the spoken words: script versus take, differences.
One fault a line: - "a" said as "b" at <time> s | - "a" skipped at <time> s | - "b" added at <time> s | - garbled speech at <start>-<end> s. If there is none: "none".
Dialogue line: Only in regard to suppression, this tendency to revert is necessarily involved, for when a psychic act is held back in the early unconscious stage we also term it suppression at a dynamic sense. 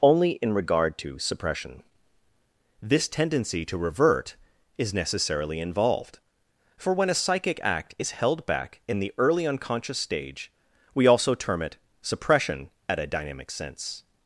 none